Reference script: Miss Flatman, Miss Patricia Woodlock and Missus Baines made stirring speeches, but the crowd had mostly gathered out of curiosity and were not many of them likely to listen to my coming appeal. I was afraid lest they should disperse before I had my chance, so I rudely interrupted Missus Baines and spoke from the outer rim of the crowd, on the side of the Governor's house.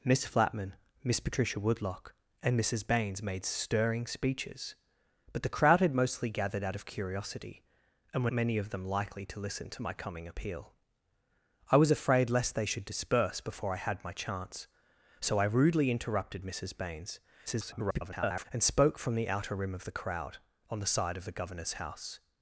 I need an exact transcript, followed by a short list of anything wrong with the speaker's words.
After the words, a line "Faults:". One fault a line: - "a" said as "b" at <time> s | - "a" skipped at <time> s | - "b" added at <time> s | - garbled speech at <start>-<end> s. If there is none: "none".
Miss Flatman, Miss Patricia Woodlock and Missus Baines made stirring speeches, but the crowd had mostly gathered out of curiosity and were many of them likely to listen to my coming appeal. I was afraid lest they should disperse before I had my chance, so I rudely interrupted Missus Baines [garbled] and spoke from the outer rim of the crowd, on the side of the Governor's house.
Faults:
- "not" skipped at 8.3 s
- garbled speech at 17.5-18.5 s